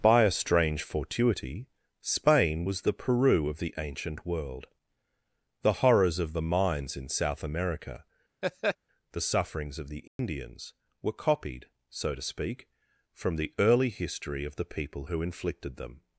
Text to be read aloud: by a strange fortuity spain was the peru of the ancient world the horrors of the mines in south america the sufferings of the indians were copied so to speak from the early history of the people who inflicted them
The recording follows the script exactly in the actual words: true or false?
true